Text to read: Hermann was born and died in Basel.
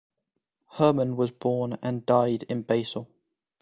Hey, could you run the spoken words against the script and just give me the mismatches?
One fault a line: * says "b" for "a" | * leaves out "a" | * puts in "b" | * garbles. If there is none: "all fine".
all fine